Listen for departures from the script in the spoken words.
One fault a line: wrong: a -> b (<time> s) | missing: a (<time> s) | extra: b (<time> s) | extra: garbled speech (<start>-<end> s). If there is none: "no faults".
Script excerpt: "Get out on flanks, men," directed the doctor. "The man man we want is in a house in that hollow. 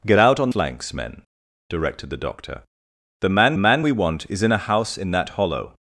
no faults